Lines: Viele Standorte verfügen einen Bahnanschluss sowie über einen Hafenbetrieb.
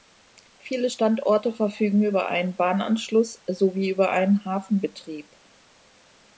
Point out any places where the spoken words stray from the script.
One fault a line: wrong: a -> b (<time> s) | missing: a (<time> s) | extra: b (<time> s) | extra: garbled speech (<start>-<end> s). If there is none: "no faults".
extra: über (2.0 s)